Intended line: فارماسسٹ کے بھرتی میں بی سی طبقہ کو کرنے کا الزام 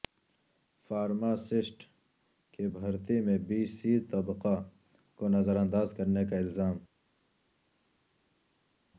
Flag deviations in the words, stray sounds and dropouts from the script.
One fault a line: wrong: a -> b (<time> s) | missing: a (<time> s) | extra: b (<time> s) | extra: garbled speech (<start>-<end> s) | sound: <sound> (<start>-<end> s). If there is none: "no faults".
wrong: کے -> کی (2.5 s)
extra: نظرانداز (5.3 s)